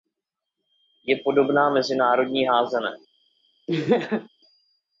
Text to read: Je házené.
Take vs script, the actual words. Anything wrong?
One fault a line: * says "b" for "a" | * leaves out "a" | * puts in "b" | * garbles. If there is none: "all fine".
* puts in "podobná mezinárodní"